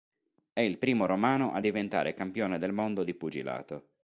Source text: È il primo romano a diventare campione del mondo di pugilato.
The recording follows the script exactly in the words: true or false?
true